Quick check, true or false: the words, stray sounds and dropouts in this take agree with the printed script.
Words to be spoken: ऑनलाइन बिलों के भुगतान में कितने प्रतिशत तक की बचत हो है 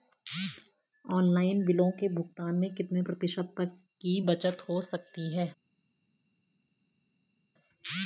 false